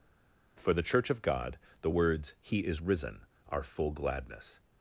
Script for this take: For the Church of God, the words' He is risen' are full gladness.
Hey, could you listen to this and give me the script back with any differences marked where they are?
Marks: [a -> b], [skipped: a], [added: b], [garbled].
For the Church of God, the words' He is risen' are full gladness.